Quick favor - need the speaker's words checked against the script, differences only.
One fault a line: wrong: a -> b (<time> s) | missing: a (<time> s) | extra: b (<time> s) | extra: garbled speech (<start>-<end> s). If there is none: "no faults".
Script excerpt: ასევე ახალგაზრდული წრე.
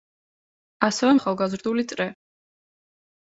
no faults